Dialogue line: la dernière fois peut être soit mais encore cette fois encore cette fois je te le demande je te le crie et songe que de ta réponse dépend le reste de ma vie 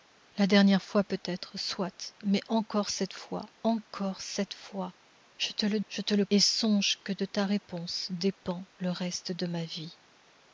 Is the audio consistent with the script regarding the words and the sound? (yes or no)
no